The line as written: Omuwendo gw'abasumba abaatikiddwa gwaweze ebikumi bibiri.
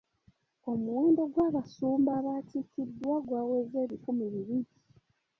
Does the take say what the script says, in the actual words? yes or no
yes